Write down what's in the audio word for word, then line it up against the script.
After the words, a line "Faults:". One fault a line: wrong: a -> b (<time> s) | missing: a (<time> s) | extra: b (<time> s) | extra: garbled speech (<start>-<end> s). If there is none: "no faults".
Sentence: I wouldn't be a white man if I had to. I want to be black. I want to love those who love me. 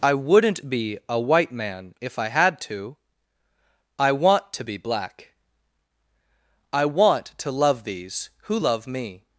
I wouldn't be a white man if I had to. I want to be black. I want to love these who love me.
Faults:
wrong: those -> these (7.8 s)